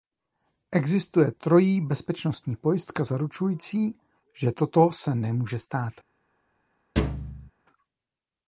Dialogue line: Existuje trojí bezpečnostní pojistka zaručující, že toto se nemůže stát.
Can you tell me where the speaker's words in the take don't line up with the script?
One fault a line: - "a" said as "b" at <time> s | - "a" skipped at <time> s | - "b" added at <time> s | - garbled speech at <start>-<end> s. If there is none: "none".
none